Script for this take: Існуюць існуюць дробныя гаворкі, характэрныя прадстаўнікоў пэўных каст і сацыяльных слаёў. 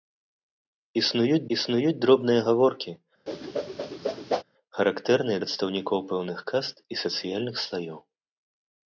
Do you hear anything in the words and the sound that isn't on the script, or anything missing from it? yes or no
yes